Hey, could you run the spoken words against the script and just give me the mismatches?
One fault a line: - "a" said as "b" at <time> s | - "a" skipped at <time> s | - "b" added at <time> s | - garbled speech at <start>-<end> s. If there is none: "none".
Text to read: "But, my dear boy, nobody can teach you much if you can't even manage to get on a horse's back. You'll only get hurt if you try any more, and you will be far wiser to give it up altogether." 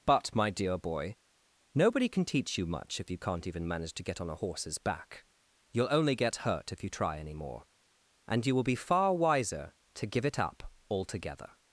none